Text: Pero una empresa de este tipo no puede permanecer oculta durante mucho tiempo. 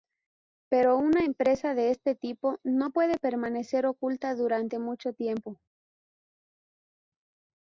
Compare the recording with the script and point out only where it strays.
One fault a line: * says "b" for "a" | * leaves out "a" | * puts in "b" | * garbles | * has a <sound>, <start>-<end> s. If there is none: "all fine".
all fine